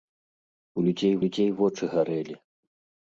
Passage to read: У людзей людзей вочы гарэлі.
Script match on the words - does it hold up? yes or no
yes